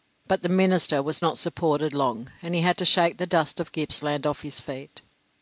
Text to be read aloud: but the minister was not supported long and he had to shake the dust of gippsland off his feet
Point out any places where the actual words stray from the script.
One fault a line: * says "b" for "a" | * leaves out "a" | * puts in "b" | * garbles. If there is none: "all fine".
all fine